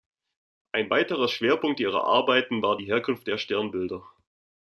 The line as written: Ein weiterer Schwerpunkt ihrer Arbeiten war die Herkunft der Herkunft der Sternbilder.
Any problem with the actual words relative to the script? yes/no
yes